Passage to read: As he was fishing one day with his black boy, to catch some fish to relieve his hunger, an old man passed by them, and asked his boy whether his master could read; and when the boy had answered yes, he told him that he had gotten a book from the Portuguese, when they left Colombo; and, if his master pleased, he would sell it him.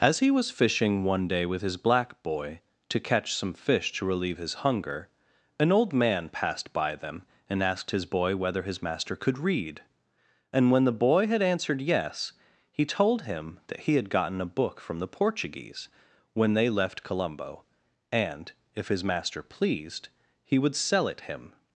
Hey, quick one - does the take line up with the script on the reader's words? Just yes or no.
yes